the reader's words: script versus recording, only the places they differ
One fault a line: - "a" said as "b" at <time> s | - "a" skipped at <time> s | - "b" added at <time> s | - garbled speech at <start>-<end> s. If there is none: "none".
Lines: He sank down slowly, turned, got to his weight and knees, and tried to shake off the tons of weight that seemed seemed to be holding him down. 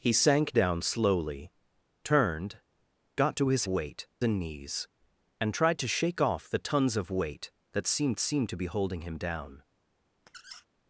none